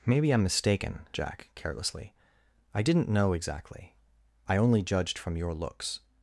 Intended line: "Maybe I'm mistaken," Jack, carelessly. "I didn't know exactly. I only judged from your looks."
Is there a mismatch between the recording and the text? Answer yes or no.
no